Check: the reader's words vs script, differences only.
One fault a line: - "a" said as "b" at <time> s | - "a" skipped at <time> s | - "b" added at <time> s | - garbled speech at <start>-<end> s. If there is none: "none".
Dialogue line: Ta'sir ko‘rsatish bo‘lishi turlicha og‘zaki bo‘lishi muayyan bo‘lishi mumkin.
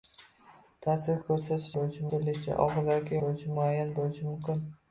none